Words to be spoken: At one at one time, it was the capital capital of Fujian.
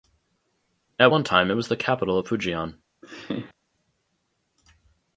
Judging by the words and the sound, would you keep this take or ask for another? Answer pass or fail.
fail